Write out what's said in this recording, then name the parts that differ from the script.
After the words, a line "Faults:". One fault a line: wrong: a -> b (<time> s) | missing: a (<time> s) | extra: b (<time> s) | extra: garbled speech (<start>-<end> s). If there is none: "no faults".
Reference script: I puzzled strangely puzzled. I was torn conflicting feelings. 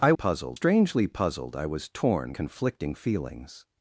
I puzzled strangely puzzled. I was torn conflicting feelings.
Faults:
no faults